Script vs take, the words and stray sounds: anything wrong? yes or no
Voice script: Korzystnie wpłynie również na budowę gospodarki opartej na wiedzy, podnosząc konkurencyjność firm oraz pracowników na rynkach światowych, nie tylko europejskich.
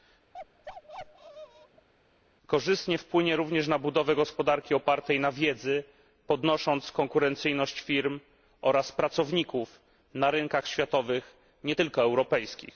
yes